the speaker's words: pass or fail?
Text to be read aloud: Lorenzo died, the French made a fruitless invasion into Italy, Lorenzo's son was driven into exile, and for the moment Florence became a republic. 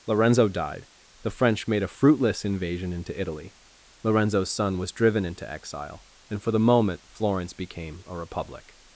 pass